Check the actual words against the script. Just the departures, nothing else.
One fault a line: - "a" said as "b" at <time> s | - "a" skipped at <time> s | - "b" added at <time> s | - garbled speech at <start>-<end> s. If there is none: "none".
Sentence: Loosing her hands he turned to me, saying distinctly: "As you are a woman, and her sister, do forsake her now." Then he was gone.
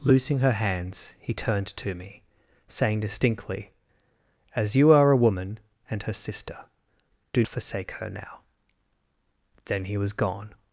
none